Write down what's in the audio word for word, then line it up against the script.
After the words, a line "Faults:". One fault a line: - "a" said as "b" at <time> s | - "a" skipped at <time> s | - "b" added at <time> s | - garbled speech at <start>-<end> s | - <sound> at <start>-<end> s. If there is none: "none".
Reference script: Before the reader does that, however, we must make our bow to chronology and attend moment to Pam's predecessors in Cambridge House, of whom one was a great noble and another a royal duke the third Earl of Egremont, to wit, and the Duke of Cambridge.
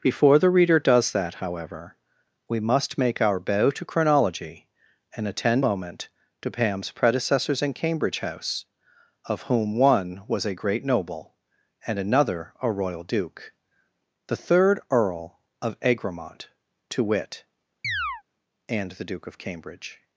Before the reader does that, however, we must make our bow to chronology and attend moment to Pam's predecessors in Cambridge House, of whom one was a great noble and another a royal duke the third Earl of Egremont, to wit, and the Duke of Cambridge.
Faults:
- chirp at 17.8-18.2 s